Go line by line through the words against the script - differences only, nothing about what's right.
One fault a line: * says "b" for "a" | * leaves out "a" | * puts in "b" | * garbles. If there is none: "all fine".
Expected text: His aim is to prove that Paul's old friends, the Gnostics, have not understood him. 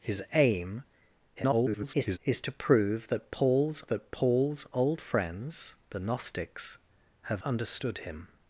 * garbles
* puts in "that Paul's"
* leaves out "not"